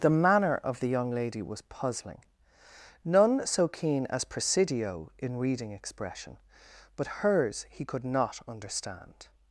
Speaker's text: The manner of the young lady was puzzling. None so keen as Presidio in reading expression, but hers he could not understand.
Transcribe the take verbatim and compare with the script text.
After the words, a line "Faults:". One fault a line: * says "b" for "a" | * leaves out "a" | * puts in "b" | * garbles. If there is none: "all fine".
The manner of the young lady was puzzling. None so keen as Presidio in reading expression, but hers he could not understand.
Faults:
all fine